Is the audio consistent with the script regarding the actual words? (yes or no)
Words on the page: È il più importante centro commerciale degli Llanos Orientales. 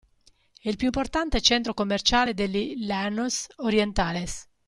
yes